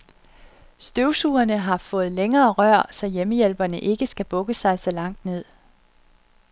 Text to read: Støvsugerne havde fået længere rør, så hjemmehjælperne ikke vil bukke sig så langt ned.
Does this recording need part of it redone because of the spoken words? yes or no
yes